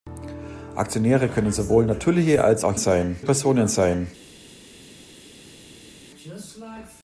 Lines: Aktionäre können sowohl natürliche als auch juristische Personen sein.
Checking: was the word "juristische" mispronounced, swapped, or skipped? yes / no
yes